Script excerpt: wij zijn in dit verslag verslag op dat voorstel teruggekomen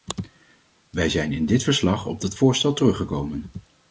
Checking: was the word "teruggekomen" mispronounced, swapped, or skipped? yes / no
no